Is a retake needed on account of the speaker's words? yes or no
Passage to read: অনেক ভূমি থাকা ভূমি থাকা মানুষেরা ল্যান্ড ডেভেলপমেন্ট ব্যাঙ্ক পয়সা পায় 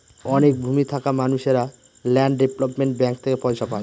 yes